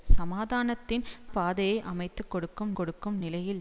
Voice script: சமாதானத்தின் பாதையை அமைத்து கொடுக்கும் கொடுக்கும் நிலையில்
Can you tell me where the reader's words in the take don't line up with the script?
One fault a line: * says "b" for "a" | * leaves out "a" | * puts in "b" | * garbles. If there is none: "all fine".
all fine